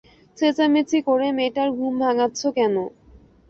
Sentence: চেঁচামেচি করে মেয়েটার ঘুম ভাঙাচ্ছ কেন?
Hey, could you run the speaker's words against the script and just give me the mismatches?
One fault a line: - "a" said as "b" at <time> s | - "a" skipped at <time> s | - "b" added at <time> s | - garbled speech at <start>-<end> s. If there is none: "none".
none